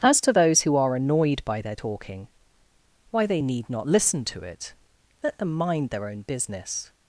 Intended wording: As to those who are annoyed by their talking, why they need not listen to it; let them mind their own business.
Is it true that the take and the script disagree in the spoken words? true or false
false